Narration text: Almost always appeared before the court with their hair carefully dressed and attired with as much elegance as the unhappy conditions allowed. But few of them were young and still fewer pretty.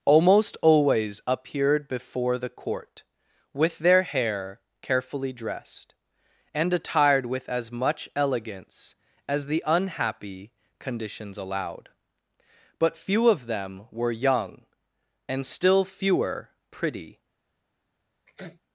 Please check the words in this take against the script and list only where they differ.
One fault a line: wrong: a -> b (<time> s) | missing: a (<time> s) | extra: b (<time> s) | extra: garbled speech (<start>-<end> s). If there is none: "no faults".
no faults